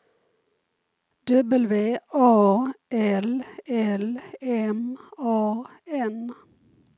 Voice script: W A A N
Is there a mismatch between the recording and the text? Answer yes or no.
yes